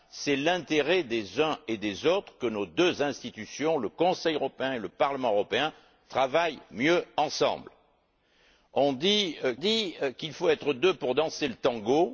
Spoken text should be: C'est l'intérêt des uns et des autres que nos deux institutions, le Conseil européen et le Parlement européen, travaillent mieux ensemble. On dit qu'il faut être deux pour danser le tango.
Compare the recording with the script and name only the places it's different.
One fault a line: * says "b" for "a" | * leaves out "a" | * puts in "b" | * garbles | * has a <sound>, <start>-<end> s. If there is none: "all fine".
* puts in "dit"